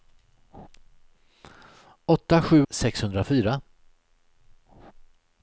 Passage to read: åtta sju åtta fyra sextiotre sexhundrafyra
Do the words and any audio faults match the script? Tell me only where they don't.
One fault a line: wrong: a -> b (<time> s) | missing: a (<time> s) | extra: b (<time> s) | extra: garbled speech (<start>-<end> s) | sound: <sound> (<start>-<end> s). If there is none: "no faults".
missing: åtta fyra sextiotre (2.7 s)